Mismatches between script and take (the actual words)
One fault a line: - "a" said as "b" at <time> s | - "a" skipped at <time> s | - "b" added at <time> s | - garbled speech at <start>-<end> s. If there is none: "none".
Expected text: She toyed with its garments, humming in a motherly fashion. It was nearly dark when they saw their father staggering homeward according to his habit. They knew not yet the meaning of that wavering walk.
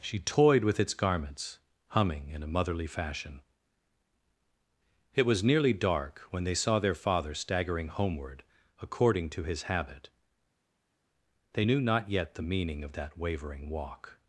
none